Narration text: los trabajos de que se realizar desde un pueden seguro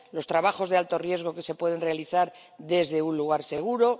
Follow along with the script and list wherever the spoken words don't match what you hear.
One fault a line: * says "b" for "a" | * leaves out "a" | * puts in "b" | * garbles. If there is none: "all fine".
* puts in "alto riesgo"
* puts in "pueden"
* says "lugar" for "pueden"